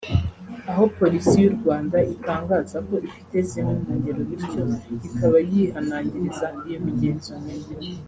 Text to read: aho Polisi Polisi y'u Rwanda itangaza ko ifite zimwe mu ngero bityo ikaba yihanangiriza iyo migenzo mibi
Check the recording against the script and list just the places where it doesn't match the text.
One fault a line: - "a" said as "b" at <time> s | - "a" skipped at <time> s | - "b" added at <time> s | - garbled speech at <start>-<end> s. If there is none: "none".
- "Polisi" skipped at 1.4 s